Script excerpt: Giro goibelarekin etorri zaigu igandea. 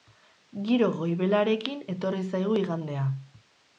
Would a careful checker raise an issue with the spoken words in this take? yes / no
no